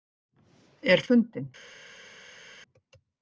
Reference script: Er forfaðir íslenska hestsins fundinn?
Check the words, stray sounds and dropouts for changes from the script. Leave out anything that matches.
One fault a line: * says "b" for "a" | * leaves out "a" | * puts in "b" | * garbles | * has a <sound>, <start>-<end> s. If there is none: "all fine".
* leaves out "forfaðir íslenska hestsins"